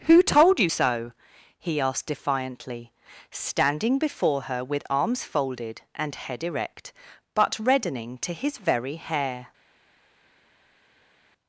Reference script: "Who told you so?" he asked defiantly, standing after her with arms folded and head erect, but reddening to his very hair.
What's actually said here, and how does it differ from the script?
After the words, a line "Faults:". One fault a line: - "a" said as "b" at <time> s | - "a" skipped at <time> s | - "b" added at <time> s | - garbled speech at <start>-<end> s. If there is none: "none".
"Who told you so?" he asked defiantly, standing before her with arms folded and head erect, but reddening to his very hair.
Faults:
- "after" said as "before" at 4.0 s